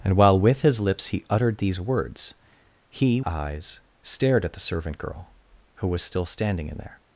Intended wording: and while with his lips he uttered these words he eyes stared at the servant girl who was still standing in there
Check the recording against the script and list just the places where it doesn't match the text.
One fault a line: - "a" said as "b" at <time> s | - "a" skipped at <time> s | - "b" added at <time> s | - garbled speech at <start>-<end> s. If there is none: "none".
none